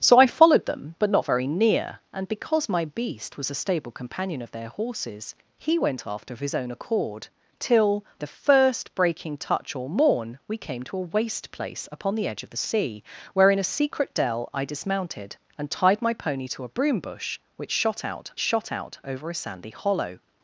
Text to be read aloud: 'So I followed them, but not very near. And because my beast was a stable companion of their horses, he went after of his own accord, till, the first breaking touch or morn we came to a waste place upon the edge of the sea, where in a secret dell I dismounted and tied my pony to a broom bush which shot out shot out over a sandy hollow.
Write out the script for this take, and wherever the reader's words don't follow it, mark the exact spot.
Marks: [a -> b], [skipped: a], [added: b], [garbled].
'So I followed them, but not very near. And because my beast was a stable companion of their horses, he went after of his own accord, till, the first breaking touch or morn we came to a waste place upon the edge of the sea, where in a secret dell I dismounted and tied my pony to a broom bush which shot out shot out over a sandy hollow.